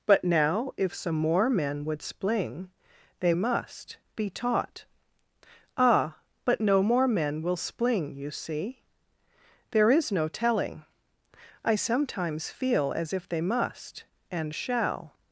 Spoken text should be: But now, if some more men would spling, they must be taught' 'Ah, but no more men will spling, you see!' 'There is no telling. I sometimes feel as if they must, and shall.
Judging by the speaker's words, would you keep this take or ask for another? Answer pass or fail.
pass